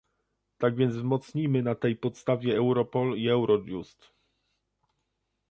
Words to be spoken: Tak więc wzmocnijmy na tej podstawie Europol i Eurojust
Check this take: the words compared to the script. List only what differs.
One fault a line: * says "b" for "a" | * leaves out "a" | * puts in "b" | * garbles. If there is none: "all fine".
all fine